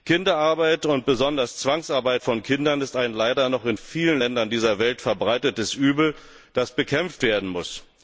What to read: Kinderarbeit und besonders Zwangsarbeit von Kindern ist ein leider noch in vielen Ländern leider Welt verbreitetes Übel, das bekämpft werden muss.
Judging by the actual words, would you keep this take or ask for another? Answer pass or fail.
fail